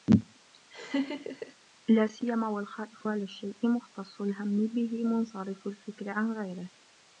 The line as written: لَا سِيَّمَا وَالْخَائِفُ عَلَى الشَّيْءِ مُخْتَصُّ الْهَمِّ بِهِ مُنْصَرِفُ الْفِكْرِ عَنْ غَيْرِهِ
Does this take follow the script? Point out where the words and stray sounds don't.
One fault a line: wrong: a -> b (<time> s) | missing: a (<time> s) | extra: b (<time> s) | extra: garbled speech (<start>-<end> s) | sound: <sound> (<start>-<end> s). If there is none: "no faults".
sound: laugh (0.7-1.6 s)